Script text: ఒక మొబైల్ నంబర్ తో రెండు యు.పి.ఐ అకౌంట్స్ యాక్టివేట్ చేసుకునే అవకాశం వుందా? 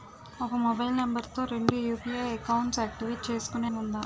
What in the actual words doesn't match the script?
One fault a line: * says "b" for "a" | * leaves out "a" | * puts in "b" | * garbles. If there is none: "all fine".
* leaves out "అవకాశం"